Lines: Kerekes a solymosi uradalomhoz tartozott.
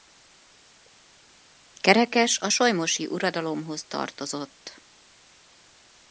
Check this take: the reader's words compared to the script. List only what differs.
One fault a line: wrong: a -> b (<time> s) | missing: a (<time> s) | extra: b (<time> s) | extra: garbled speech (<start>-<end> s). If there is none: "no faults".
no faults